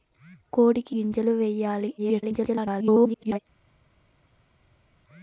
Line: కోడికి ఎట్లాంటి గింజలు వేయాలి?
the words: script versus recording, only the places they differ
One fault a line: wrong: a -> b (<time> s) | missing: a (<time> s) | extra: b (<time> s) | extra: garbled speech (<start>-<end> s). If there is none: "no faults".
missing: ఎట్లాంటి (0.9 s)
extra: garbled speech (2.0-3.4 s)